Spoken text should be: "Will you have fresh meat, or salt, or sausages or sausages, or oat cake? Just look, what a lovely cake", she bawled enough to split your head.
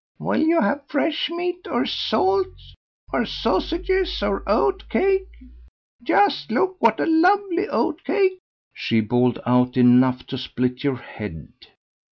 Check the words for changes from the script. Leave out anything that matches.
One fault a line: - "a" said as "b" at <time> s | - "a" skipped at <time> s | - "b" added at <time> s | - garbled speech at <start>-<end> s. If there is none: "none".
- "sausages or" skipped at 4.4 s
- "oat" added at 7.7 s
- "out" added at 9.4 s